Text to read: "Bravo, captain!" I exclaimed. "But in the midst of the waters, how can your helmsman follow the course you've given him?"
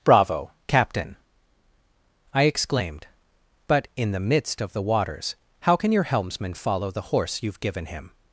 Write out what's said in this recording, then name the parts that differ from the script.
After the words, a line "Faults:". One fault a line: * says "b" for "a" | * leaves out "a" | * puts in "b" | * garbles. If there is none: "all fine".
"Bravo, captain!" I exclaimed. "But in the midst of the waters, how can your helmsman follow the horse you've given him?"
Faults:
* says "horse" for "course"